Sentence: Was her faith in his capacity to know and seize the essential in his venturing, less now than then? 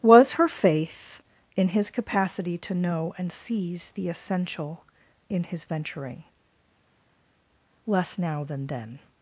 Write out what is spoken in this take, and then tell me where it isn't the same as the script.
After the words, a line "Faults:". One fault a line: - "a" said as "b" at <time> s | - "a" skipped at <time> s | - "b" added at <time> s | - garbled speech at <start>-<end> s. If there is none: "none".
Was her faith in his capacity to know and seize the essential in his venturing, less now than then?
Faults:
none